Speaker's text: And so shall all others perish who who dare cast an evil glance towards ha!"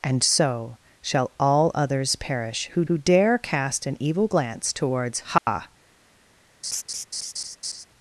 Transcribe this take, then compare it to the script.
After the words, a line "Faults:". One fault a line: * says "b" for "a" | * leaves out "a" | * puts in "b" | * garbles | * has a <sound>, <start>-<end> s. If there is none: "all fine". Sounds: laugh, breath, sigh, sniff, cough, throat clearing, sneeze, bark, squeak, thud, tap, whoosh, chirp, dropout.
And so shall all others perish who who dare cast an evil glance towards ha!"
Faults:
* has a dropout, 5.4-5.5 s
* has a laugh, 6.6-7.9 s